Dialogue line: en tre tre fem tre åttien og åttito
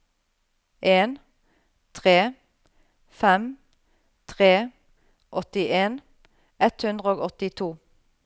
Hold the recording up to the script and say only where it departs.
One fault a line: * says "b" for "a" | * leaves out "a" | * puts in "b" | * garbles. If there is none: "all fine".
* leaves out "tre"
* puts in "ett hundre"